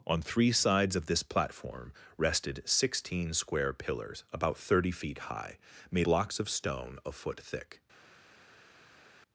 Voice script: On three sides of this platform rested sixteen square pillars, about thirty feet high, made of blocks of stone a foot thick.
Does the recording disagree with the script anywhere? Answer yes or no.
yes